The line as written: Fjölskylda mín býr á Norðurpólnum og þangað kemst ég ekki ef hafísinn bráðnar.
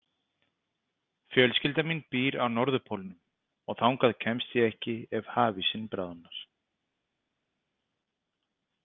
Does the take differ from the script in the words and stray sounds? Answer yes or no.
no